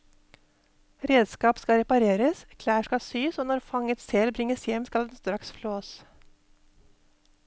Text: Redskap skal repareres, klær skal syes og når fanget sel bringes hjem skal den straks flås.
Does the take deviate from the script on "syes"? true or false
false